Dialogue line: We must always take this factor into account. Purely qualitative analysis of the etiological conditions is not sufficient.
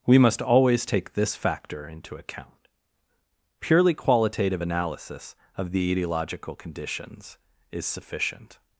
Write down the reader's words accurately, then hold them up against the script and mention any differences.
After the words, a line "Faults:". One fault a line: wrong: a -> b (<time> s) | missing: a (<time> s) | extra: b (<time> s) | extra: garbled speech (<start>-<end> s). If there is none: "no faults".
We must always take this factor into account. Purely qualitative analysis of the etiological conditions is sufficient.
Faults:
missing: not (7.9 s)